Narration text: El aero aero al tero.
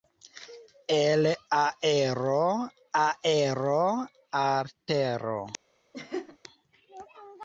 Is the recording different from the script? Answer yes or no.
no